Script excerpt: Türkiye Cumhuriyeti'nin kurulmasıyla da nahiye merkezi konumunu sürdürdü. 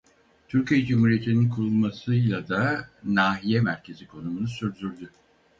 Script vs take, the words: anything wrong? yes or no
no